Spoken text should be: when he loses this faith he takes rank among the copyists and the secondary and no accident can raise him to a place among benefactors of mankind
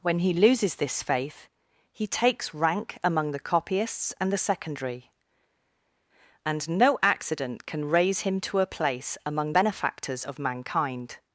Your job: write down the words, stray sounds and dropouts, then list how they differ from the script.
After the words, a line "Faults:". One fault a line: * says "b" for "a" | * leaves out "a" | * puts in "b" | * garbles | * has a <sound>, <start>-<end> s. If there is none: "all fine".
when he loses this faith he takes rank among the copyists and the secondary and no accident can raise him to a place among benefactors of mankind
Faults:
all fine